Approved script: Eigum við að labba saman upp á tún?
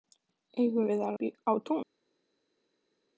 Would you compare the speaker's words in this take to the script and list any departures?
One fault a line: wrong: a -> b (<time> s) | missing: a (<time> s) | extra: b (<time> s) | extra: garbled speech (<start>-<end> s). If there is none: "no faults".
missing: labba saman (1.2 s)